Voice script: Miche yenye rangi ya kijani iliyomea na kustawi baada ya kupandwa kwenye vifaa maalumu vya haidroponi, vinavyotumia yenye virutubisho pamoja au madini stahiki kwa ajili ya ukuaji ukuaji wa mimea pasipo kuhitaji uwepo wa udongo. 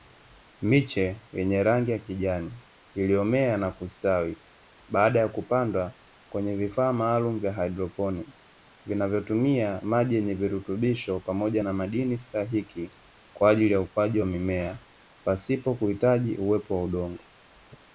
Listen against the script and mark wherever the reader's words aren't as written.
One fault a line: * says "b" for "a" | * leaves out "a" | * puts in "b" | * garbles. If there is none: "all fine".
* puts in "maji"
* says "na" for "au"
* leaves out "ukuaji"